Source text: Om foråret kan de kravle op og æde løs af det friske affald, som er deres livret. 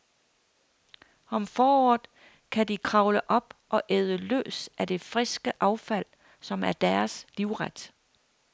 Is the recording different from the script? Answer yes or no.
no